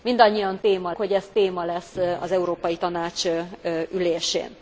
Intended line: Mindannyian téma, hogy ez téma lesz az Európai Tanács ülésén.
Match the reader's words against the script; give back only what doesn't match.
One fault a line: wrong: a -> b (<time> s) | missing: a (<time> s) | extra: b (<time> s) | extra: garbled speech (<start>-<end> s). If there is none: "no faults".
no faults